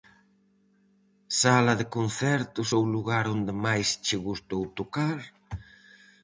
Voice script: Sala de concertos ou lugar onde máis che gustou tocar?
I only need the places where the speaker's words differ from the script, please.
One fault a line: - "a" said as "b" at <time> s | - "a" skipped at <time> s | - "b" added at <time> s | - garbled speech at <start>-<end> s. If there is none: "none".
none